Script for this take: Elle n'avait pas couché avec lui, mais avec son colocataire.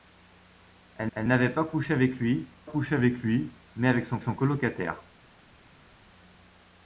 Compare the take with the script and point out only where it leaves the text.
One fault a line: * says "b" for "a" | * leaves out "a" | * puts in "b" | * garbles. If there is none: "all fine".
* puts in "elle"
* puts in "couché avec lui"
* puts in "son"